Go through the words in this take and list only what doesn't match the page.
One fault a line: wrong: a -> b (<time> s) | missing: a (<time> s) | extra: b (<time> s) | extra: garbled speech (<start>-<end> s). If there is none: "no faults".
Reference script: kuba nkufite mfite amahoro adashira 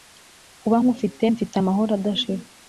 no faults